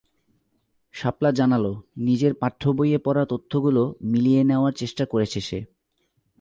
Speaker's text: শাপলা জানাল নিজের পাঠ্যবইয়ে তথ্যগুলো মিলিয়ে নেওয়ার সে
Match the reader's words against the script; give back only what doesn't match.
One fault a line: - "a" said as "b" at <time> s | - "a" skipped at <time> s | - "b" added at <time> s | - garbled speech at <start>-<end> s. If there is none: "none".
- "পড়া" added at 3.0 s
- "চেষ্টা করেছে" added at 4.7 s